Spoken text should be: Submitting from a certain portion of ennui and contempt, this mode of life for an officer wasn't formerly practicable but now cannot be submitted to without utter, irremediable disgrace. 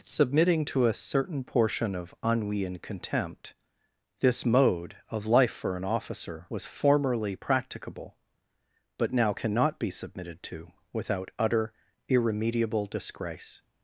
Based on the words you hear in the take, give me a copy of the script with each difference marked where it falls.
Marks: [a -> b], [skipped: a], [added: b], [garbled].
Submitting [from -> to] a certain portion of ennui and contempt, this mode of life for an officer [wasn't -> was] formerly practicable but now cannot be submitted to without utter, irremediable disgrace.